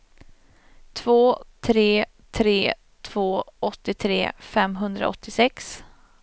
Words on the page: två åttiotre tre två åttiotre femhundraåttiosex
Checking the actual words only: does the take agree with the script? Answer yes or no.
no